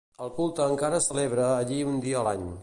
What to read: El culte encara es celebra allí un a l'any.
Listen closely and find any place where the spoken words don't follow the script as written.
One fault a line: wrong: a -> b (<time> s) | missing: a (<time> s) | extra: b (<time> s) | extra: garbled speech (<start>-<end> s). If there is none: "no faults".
extra: dia (2.1 s)